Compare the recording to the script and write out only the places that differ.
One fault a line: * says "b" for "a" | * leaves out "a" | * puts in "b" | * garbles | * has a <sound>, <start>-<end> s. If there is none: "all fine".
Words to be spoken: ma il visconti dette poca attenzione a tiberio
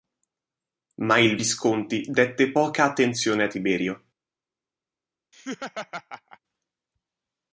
* has a laugh, 5.3-6.4 s